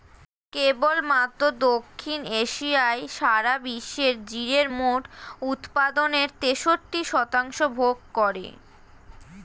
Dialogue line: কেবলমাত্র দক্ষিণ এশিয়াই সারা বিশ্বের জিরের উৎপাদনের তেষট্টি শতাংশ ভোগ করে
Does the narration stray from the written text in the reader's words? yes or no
yes